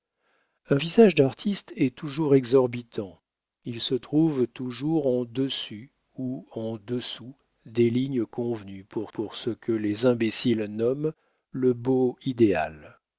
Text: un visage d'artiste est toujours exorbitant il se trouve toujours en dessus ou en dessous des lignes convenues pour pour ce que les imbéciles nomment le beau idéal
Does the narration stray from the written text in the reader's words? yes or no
no